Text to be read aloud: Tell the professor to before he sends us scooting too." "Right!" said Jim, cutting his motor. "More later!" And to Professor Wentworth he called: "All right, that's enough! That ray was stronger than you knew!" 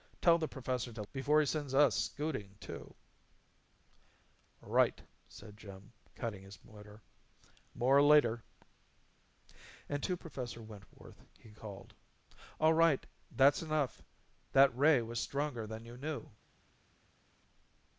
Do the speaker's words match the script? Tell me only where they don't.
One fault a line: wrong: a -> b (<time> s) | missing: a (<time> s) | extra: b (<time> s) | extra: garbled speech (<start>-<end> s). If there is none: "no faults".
no faults